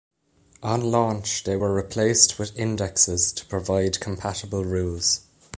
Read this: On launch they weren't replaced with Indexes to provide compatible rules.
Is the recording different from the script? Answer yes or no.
yes